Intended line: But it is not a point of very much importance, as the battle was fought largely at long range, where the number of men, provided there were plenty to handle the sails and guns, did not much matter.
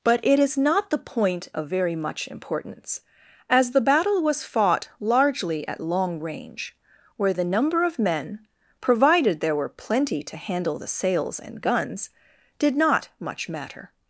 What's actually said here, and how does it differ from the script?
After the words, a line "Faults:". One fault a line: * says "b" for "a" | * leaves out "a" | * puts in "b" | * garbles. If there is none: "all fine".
But it is not the point of very much importance, as the battle was fought largely at long range, where the number of men, provided there were plenty to handle the sails and guns, did not much matter.
Faults:
* says "the" for "a"